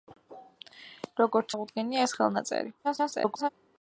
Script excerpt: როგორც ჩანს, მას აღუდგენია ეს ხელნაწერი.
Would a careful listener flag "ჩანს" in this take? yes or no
yes